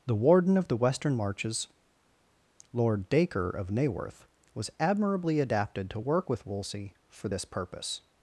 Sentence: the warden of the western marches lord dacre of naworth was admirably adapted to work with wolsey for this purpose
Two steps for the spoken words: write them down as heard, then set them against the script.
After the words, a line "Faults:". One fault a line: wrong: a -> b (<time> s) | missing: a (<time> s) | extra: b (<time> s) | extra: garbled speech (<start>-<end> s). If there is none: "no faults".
the warden of the western marches lord dacre of naworth was admirably adapted to work with wolsey for this purpose
Faults:
no faults